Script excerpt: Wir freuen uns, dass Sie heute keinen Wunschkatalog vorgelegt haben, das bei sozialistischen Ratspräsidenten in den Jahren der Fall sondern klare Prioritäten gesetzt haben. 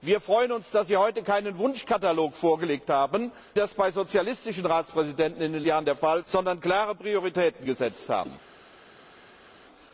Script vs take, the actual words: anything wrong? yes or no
no